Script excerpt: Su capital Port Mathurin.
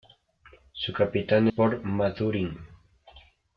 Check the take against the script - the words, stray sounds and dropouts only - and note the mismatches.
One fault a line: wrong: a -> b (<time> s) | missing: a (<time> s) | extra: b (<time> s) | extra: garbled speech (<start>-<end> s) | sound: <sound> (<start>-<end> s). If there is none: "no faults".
no faults